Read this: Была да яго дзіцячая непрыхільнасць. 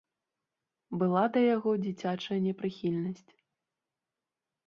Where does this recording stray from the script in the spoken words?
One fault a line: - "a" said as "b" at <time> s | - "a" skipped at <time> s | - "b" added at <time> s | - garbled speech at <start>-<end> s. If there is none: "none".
none